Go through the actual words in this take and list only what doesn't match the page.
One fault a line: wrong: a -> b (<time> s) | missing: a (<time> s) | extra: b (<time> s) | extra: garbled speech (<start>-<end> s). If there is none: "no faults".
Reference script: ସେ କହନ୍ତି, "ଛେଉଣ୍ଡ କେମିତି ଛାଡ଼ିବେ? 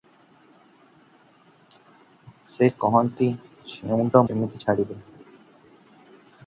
no faults